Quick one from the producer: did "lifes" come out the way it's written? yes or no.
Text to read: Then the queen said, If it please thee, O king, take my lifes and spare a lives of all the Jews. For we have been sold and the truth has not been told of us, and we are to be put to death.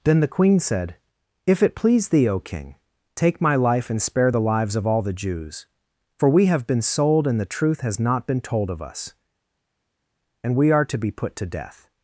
no